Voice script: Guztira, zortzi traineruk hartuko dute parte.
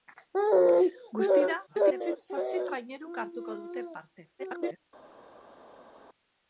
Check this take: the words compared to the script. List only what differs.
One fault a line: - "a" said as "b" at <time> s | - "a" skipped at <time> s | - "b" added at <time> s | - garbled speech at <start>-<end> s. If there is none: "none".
- garbled speech at 1.7-2.2 s
- garbled speech at 4.4-4.9 s